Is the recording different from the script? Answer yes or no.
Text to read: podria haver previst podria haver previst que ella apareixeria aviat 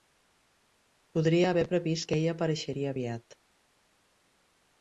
yes